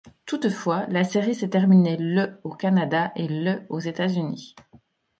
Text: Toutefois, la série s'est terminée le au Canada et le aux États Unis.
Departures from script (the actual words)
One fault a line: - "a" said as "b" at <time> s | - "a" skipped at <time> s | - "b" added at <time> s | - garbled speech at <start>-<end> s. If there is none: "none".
none